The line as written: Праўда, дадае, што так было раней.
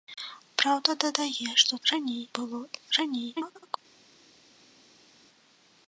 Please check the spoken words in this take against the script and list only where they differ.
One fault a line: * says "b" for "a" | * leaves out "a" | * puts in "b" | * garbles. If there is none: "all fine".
* says "раней" for "так"
* garbles